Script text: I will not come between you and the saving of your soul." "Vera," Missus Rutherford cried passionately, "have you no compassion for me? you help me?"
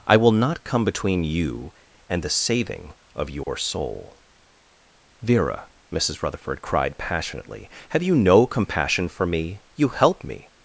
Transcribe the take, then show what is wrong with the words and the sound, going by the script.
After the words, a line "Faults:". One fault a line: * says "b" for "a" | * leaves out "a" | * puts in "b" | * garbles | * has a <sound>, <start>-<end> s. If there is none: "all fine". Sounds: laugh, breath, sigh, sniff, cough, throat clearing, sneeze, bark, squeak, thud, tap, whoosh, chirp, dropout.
I will not come between you and the saving of your soul." "Vera," Missus Rutherford cried passionately, "have you no compassion for me? you help me?"
Faults:
* has a dropout, 3.4-3.5 s